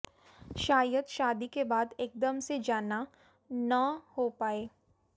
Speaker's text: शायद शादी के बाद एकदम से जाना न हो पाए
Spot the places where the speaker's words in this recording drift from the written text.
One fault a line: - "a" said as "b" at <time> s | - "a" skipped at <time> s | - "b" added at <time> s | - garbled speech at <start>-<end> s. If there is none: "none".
none